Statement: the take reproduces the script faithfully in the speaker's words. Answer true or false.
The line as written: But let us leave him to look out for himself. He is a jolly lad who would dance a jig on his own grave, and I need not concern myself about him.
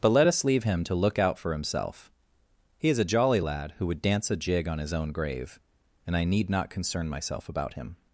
true